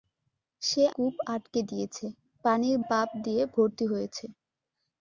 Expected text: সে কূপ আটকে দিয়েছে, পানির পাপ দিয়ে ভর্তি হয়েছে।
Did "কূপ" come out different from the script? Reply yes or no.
no